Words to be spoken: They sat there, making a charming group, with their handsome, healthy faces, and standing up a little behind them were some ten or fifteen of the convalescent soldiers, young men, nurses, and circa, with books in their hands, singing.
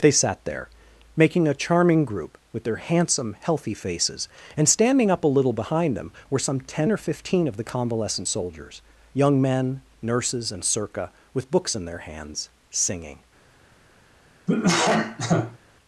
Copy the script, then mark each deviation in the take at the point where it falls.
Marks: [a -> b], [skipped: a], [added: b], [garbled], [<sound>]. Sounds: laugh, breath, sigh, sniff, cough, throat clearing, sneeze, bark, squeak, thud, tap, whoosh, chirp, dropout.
They sat there, making a charming group, with their handsome, healthy faces, and standing up a little behind them were some ten or fifteen of the convalescent soldiers, young men, nurses, and circa, with books in their hands, singing. [cough]